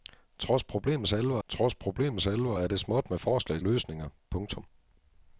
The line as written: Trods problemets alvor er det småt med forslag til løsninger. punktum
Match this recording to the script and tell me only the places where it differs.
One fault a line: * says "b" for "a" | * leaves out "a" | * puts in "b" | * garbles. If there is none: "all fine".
* puts in "trods problemets alvor"
* leaves out "til"